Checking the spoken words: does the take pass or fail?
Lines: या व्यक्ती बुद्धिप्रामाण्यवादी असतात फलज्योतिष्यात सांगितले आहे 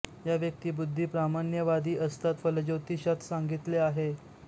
pass